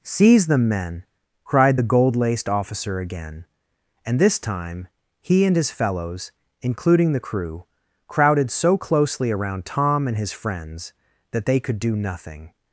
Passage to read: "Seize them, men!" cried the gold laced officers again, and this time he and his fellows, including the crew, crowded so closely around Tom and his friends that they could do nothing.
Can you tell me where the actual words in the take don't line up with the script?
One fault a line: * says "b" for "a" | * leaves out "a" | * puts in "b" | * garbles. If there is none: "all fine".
* says "officer" for "officers"